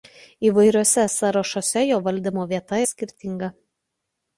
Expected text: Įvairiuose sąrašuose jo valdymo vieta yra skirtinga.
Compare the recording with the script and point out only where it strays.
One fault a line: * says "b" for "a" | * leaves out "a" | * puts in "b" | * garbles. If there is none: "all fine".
* leaves out "yra"